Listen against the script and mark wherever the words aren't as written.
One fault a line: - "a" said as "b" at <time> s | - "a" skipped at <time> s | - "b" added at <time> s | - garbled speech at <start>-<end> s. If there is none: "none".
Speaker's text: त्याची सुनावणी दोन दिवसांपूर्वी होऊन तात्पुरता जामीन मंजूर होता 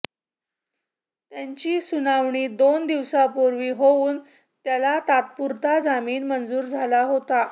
- "त्याला" added at 4.7 s
- "झाला" added at 6.6 s